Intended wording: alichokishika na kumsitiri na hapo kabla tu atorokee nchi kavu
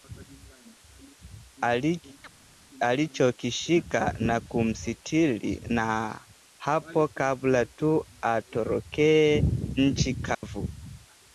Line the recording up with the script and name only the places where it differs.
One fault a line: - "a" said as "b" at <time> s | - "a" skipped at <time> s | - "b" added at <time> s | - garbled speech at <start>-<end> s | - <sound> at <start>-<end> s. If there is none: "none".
- chirp at 2.2-2.4 s
- dropout at 10.3-10.4 s